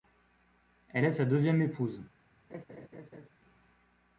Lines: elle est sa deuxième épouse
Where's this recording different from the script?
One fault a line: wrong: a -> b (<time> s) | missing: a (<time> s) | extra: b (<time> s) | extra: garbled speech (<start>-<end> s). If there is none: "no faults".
no faults